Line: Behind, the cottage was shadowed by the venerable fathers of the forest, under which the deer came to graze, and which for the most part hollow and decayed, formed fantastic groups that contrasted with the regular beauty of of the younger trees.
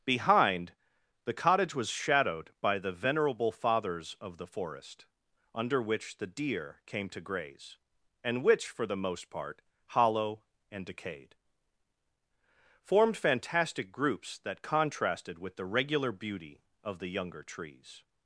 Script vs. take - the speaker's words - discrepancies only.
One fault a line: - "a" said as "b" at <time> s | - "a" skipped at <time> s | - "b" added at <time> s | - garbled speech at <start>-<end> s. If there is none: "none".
- "of" skipped at 17.0 s